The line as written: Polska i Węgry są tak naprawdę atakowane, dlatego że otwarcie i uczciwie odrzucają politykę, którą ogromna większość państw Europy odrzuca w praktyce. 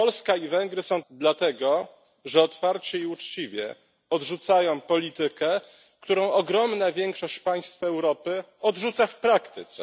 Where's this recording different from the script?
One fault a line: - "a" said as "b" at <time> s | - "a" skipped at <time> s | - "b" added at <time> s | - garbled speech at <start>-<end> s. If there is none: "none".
- "tak naprawdę atakowane" skipped at 1.0 s